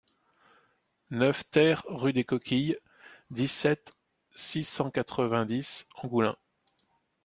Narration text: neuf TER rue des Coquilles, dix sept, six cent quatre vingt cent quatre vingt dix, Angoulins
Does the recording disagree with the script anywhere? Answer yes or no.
yes